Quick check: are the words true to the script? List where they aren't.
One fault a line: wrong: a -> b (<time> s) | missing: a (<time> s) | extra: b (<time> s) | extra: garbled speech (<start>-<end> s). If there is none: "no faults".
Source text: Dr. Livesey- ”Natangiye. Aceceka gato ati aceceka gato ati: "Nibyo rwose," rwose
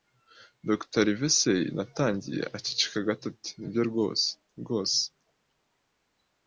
missing: aceceka gato ati (3.5 s)